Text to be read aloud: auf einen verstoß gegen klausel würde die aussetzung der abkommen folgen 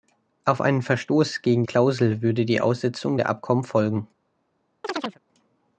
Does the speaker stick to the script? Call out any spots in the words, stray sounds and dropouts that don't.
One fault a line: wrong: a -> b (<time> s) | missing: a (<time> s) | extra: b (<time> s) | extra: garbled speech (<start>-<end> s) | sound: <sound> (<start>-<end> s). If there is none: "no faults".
sound: chirp (4.8-5.2 s)